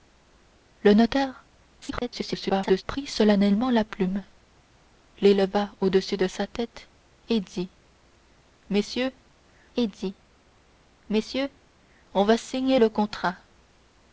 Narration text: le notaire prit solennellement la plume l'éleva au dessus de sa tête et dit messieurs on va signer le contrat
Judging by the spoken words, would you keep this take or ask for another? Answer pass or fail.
fail